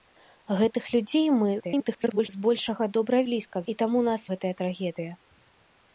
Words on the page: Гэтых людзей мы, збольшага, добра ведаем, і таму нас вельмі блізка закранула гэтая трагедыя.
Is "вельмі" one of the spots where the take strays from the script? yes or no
yes